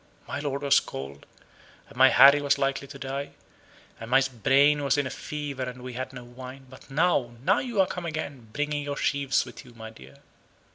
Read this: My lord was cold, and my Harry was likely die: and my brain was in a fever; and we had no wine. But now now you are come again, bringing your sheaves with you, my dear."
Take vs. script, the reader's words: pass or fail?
fail